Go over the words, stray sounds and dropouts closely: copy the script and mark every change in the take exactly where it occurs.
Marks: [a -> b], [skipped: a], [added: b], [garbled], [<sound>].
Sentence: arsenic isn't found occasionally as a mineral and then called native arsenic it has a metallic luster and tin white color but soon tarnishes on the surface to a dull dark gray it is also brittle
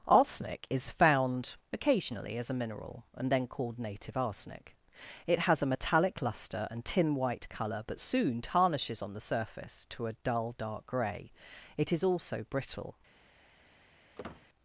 arsenic [isn't -> is] found occasionally as a mineral and then called native arsenic it has a metallic luster and tin white color but soon tarnishes on the surface to a dull dark gray it is also brittle [squeak]